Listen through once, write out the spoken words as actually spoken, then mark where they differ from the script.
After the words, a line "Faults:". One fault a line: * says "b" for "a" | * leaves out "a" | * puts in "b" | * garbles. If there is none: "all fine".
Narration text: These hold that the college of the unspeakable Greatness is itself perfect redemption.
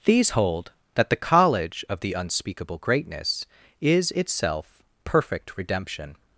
These hold that the college of the unspeakable Greatness is itself perfect redemption.
Faults:
all fine